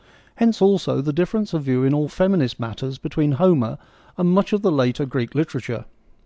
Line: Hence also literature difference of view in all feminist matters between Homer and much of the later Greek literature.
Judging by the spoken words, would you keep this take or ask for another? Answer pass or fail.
fail